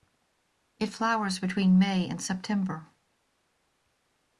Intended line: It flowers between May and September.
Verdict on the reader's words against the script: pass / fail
pass